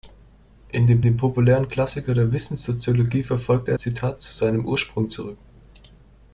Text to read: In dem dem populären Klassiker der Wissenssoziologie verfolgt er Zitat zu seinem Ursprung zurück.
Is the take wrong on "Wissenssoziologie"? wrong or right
right